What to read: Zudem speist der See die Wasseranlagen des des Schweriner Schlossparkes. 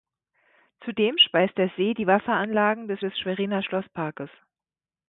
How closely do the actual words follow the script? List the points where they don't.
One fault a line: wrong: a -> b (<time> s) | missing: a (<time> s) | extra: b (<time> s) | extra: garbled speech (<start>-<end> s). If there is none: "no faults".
no faults